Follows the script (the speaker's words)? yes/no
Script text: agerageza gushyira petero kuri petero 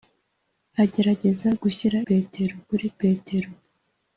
yes